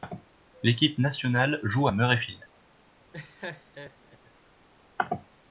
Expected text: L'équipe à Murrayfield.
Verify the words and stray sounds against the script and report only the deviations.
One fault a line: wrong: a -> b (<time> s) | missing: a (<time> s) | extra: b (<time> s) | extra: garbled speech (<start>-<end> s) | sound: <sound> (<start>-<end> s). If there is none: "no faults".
extra: nationale joue (1.0 s)
sound: laugh (3.1-4.2 s)